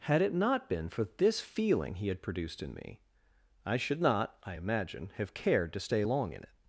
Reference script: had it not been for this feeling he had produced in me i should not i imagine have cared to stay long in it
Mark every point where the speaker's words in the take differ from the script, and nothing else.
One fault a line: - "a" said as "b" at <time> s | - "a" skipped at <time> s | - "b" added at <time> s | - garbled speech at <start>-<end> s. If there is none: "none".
none